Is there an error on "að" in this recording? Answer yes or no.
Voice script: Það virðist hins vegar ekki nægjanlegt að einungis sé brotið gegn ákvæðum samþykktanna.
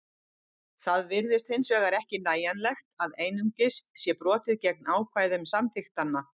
no